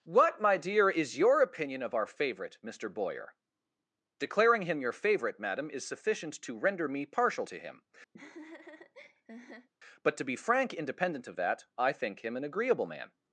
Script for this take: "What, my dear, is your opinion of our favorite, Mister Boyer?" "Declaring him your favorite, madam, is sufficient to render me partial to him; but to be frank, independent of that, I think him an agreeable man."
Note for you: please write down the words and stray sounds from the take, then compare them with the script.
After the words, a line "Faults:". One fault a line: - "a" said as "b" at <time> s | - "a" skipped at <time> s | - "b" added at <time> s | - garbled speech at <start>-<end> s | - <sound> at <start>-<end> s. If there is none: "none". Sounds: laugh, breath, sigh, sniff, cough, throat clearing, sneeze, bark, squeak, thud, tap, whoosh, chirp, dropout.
"What, my dear, is your opinion of our favorite, Mister Boyer?" "Declaring him your favorite, madam, is sufficient to render me partial to him; but to be frank, independent of that, I think him an agreeable man."
Faults:
- laugh at 8.1-9.7 s